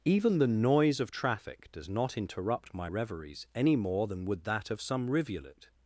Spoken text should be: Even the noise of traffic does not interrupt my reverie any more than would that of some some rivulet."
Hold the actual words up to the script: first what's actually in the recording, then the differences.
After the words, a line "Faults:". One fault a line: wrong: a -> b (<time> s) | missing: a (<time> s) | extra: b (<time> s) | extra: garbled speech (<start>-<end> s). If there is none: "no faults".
Even the noise of traffic does not interrupt my reveries any more than would that of some rivulet."
Faults:
wrong: reverie -> reveries (2.8 s)
missing: some (5.1 s)